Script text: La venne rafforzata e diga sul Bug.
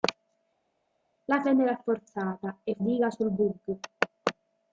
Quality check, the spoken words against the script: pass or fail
pass